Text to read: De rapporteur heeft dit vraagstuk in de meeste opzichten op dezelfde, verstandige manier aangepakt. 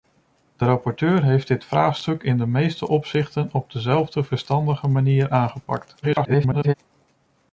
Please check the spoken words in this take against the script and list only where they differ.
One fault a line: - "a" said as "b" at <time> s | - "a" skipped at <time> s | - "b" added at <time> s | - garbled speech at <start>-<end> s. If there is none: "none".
- garbled speech at 6.0-6.7 s